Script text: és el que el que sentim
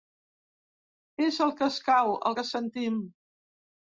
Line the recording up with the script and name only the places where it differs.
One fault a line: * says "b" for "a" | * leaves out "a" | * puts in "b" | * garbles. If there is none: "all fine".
* puts in "escau"